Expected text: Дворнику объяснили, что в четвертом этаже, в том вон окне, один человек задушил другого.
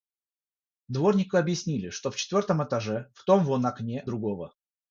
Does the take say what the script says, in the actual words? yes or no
no